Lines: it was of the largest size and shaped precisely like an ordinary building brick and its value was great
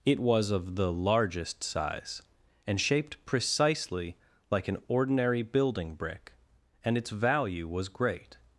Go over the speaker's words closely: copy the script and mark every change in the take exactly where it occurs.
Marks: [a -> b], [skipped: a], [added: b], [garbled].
it was of the largest size and shaped precisely like an ordinary building brick and its value was great